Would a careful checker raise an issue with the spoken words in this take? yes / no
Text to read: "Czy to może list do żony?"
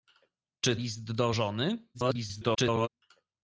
yes